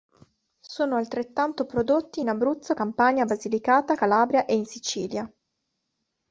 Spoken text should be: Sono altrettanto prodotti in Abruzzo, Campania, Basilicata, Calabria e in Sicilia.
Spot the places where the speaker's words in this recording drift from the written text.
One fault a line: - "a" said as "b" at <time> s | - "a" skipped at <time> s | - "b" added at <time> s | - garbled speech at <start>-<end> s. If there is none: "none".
none